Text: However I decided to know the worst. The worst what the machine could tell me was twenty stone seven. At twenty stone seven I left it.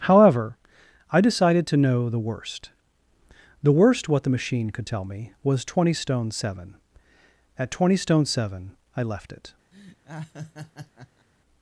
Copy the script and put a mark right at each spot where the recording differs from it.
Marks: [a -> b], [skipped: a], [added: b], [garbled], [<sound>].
However I decided to know the worst. The worst what the machine could tell me was twenty stone seven. At twenty stone seven I left it. [laugh]